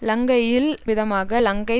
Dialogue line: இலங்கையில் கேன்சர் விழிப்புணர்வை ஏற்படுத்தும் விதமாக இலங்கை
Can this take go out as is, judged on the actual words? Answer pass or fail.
fail